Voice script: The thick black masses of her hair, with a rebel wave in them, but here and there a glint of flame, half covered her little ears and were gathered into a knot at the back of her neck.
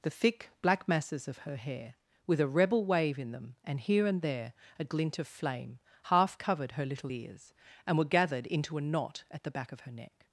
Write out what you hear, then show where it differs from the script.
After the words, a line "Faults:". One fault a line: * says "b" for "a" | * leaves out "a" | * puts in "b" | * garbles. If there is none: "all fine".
The thick black masses of her hair, with a rebel wave in them, and here and there a glint of flame, half covered her little ears and were gathered into a knot at the back of her neck.
Faults:
* says "and" for "but"